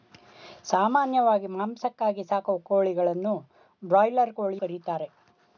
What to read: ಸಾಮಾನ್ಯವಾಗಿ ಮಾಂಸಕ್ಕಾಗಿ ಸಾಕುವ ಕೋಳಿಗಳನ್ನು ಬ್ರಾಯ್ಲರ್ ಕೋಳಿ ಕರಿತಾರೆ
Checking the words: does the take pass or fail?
pass